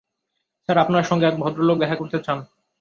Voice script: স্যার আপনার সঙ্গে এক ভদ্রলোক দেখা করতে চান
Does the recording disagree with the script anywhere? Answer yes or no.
no